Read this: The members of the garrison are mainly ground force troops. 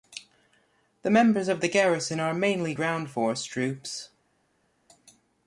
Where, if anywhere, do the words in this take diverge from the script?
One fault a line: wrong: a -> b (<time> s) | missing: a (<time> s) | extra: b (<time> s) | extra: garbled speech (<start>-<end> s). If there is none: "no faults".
no faults